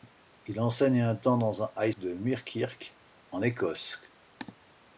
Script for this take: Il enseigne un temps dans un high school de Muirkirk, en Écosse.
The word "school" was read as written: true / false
false